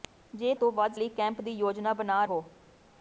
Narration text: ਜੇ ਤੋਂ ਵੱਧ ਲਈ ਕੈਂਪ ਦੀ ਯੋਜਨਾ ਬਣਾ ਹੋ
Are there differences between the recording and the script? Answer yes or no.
no